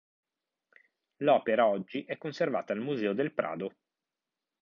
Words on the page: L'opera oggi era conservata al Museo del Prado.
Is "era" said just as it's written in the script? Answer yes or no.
no